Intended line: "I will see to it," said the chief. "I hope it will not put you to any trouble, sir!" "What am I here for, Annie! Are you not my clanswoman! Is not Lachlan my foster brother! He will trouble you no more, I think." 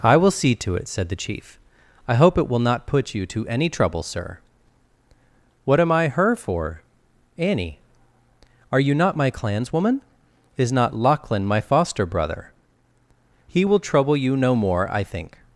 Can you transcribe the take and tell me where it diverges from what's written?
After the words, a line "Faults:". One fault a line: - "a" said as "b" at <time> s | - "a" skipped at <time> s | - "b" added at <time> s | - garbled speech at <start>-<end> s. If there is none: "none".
"I will see to it," said the chief. "I hope it will not put you to any trouble, sir!" "What am I her for, Annie! Are you not my clanswoman! Is not Lachlan my foster brother! He will trouble you no more, I think."
Faults:
- "here" said as "her" at 6.1 s